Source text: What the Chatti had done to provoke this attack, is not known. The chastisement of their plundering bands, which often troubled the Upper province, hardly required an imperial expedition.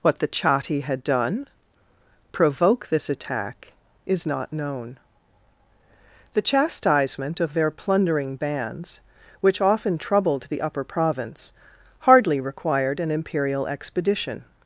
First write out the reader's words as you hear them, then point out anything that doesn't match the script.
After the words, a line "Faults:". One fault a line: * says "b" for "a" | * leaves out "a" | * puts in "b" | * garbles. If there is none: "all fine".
What the Chatti had done provoke this attack, is not known. The chastisement of their plundering bands, which often troubled the Upper province, hardly required an imperial expedition.
Faults:
* leaves out "to"